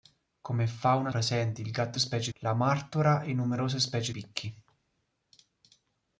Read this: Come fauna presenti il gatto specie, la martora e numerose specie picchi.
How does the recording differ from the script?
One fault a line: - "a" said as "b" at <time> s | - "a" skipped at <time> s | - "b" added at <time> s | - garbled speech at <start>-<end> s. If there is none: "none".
none